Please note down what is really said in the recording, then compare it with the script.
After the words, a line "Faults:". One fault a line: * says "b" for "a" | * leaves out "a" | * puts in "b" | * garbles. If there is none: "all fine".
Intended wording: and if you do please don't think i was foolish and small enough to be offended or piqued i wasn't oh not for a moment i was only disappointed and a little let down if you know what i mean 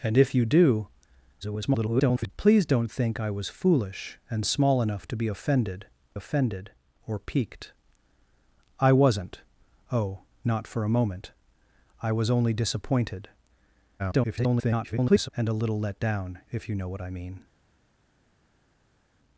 and if you do [garbled] please don't think i was foolish and small enough to be offended offended or piqued i wasn't oh not for a moment i was only disappointed [garbled] and a little let down if you know what i mean
Faults:
* garbles
* puts in "offended"
* garbles